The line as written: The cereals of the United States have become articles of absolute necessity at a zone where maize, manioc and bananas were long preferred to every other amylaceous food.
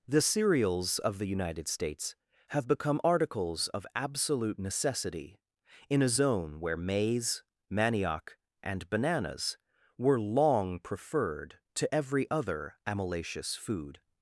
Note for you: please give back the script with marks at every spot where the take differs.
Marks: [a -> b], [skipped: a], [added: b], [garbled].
The cereals of the United States have become articles of absolute necessity [at -> in] a zone where maize, manioc and bananas were long preferred to every other amylaceous food.